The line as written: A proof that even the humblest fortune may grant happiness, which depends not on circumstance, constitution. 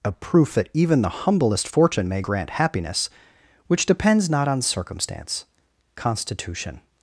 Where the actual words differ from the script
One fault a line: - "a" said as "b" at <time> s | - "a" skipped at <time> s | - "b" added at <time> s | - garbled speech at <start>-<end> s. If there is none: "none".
none